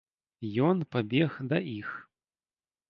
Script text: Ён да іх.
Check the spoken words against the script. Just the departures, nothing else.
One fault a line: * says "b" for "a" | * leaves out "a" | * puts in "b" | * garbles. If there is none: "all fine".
* puts in "пабег"